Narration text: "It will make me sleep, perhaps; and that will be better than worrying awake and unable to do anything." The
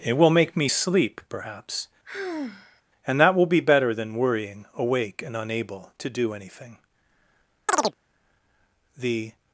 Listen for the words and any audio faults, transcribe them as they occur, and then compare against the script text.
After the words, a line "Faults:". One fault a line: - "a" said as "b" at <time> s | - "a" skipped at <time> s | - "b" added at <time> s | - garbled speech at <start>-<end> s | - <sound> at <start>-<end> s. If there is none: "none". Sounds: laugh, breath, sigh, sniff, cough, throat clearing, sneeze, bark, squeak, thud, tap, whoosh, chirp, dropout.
"It will make me sleep, perhaps; and that will be better than worrying awake and unable to do anything." The
Faults:
- sigh at 2.0-2.8 s
- chirp at 7.7-7.9 s